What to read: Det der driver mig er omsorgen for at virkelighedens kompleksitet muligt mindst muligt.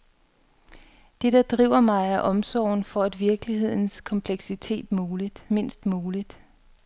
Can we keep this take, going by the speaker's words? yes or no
yes